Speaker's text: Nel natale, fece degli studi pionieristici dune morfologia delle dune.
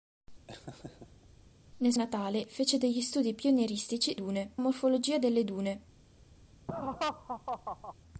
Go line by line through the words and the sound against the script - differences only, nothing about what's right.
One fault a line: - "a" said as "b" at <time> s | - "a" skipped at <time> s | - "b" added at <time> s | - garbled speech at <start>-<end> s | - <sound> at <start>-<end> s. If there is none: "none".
- laugh at 0.5-1.3 s
- laugh at 6.7-7.9 s